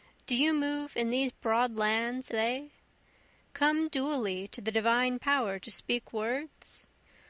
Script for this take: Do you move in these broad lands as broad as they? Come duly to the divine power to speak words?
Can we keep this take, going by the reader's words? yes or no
no